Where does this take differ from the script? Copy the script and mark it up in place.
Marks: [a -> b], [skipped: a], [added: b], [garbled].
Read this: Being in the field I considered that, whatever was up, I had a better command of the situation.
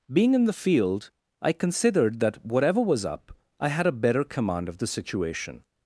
Being in the field I considered that, whatever was up, I had a better command of the situation.